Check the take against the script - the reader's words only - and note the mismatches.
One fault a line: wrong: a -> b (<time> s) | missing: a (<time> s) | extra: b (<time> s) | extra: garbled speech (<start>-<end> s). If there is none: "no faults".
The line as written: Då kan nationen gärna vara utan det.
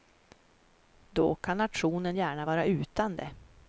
no faults